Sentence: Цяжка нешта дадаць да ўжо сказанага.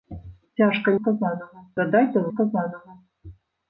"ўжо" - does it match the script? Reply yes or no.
no